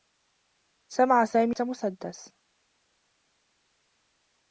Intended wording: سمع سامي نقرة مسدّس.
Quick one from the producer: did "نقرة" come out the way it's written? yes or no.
no